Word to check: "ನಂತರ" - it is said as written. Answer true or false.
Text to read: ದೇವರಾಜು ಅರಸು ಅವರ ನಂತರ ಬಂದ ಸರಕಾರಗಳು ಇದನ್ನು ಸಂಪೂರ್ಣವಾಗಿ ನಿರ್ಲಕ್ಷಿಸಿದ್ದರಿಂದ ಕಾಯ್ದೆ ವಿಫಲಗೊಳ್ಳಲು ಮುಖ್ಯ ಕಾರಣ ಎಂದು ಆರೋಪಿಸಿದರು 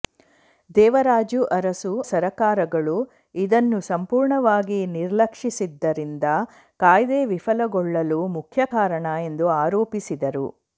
false